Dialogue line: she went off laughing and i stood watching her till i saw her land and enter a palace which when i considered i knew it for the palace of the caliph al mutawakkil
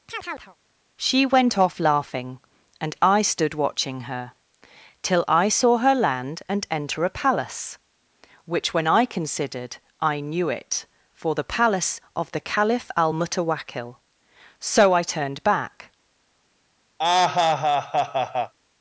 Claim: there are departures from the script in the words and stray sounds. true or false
true